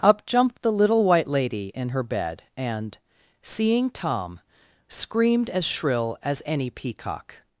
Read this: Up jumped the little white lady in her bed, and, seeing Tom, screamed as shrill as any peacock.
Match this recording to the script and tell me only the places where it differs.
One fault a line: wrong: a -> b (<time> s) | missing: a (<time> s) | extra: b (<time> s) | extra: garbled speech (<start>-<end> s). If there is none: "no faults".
no faults